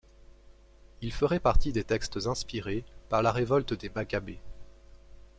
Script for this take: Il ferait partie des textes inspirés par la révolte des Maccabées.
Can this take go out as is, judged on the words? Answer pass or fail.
pass